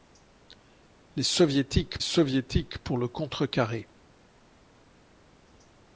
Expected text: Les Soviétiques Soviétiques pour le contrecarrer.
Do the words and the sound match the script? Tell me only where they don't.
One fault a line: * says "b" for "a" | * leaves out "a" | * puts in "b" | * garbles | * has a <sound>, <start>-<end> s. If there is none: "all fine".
all fine